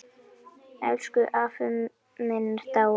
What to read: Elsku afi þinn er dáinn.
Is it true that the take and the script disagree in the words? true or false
true